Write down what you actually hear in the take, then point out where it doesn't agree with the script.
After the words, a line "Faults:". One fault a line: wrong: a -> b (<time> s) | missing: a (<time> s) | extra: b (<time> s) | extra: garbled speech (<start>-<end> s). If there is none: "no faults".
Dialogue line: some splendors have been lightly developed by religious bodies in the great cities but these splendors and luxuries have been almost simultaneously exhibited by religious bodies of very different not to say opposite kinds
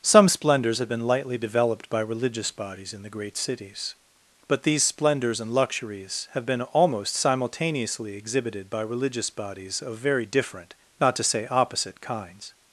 some splendors have been lightly developed by religious bodies in the great cities but these splendors and luxuries have been almost simultaneously exhibited by religious bodies of very different not to say opposite kinds
Faults:
no faults